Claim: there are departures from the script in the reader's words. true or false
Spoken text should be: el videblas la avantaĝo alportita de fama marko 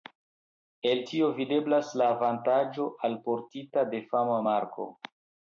true